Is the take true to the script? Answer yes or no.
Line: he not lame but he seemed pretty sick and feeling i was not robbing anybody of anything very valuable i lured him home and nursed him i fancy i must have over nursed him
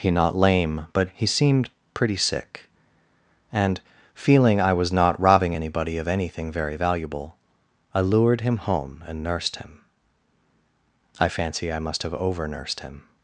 yes